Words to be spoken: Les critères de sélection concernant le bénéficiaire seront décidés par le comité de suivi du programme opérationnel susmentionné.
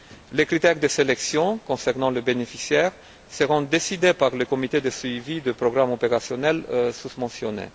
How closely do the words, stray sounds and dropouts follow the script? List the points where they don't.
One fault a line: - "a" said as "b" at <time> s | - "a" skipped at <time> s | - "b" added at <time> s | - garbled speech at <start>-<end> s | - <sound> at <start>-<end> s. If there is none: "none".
none